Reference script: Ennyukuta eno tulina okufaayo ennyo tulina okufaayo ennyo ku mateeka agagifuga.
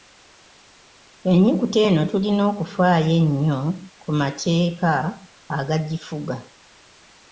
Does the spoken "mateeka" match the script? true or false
true